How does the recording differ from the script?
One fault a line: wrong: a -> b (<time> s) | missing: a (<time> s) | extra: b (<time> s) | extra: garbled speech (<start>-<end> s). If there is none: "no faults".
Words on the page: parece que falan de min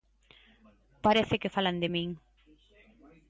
no faults